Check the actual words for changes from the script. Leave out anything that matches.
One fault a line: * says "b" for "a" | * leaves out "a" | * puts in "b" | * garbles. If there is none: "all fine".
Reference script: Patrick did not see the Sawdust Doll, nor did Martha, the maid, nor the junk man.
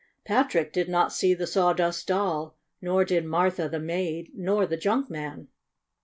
all fine